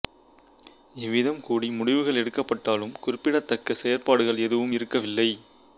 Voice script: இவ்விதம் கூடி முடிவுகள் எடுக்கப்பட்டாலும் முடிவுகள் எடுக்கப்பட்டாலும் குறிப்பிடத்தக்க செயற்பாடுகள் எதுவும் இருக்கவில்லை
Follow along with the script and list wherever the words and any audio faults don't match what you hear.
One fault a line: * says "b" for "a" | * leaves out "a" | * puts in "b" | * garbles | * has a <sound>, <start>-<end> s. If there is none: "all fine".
* leaves out "முடிவுகள் எடுக்கப்பட்டாலும்"